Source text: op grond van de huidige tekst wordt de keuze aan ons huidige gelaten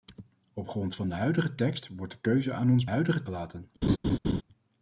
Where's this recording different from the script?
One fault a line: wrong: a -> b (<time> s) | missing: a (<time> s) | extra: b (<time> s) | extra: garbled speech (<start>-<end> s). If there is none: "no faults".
no faults